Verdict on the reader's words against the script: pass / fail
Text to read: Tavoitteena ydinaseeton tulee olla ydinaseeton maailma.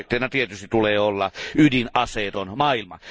fail